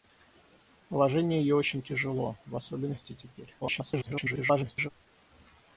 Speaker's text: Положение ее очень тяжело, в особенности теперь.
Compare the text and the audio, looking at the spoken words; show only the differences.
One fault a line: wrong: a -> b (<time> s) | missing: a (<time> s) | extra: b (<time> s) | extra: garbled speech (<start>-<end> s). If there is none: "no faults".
extra: garbled speech (3.6-4.9 s)